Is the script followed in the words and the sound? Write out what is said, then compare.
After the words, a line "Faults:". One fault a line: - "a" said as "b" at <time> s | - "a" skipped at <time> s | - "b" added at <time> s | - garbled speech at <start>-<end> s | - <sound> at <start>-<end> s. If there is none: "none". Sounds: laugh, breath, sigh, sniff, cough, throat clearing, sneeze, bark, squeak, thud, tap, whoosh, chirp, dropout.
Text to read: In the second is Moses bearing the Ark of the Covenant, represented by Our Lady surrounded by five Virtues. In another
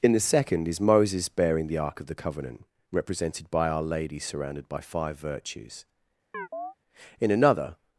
In the second is Moses bearing the Ark of the Covenant, represented by Our Lady surrounded by five Virtues. In another
Faults:
- chirp at 6.3-6.7 s